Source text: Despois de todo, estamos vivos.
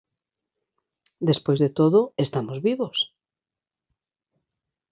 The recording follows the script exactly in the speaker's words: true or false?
true